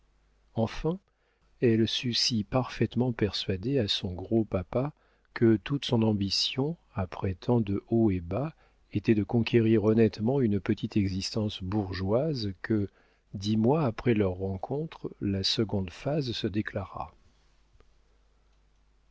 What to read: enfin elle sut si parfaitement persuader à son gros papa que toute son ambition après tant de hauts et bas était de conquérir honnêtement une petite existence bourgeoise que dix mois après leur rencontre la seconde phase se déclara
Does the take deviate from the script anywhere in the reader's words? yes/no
no